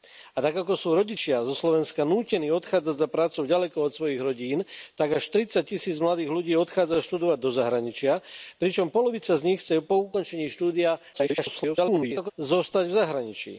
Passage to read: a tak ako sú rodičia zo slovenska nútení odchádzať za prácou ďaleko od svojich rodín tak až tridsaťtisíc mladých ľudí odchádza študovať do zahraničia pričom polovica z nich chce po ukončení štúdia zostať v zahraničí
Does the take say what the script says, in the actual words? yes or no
no